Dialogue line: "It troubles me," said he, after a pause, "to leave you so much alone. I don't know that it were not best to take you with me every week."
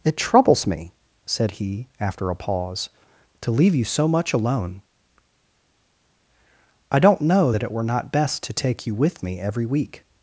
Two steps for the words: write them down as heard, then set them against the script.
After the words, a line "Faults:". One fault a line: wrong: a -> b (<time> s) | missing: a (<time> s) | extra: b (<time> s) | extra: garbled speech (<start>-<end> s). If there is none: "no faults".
"It troubles me," said he, after a pause, "to leave you so much alone. I don't know that it were not best to take you with me every week."
Faults:
no faults